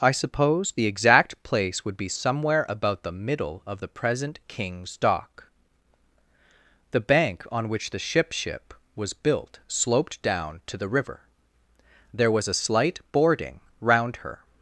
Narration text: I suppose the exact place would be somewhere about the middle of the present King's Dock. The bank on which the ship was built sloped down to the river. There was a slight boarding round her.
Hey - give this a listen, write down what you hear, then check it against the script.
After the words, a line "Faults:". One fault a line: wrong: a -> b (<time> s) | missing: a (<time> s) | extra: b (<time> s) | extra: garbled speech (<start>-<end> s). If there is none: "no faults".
I suppose the exact place would be somewhere about the middle of the present King's Dock. The bank on which the ship ship was built sloped down to the river. There was a slight boarding round her.
Faults:
extra: ship (8.3 s)